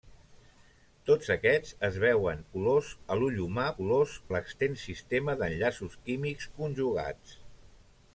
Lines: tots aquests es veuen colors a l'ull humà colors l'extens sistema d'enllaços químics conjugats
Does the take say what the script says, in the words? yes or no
yes